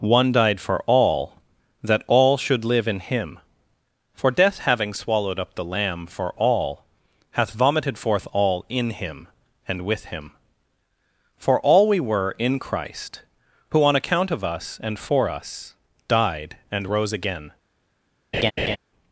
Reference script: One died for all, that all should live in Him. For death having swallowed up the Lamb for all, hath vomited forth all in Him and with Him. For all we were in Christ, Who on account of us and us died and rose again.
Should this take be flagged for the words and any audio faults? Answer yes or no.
yes